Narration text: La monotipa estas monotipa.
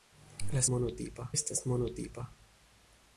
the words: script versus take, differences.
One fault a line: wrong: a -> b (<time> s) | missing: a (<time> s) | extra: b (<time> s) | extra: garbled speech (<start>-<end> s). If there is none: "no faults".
no faults